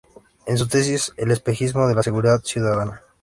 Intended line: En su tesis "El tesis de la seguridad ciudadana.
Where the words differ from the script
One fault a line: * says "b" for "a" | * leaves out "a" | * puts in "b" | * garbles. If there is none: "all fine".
* says "espejismo" for "tesis"